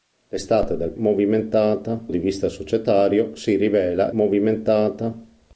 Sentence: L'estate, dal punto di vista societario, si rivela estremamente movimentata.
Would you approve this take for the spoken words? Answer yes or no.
no